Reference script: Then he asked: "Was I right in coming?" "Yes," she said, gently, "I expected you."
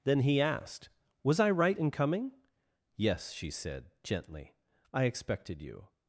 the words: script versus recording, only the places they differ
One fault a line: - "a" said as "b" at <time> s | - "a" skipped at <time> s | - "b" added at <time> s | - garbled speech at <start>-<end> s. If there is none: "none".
none